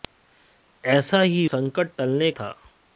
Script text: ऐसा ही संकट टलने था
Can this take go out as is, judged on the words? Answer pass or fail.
pass